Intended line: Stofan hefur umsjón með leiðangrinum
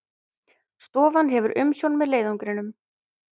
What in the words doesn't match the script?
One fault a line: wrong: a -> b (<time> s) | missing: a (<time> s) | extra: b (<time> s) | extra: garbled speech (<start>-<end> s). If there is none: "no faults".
no faults